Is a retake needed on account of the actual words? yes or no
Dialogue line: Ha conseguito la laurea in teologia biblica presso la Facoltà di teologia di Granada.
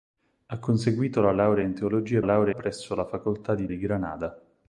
yes